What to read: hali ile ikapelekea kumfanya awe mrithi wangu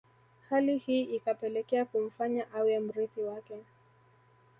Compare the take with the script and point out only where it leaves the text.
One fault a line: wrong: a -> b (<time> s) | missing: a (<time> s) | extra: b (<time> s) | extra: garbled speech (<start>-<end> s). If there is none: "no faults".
wrong: ile -> hii (0.8 s)
wrong: wangu -> wake (3.2 s)